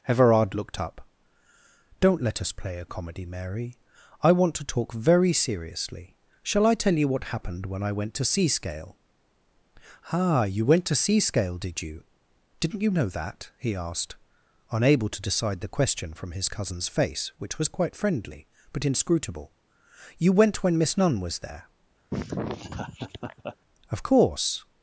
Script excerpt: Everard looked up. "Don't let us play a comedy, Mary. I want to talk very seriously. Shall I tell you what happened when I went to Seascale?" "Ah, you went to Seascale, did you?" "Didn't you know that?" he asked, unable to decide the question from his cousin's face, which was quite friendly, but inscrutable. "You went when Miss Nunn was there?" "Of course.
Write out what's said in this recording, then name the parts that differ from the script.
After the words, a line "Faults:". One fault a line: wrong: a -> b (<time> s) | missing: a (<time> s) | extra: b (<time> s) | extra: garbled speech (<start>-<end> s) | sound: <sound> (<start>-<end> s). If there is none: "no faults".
Everard looked up. "Don't let us play a comedy, Mary. I want to talk very seriously. Shall I tell you what happened when I went to Seascale?" "Ah, you went to Seascale, did you?" "Didn't you know that?" he asked, unable to decide the question from his cousin's face, which was quite friendly, but inscrutable. "You went when Miss Nunn was there?" "Of course.
Faults:
sound: laugh (22.1-23.6 s)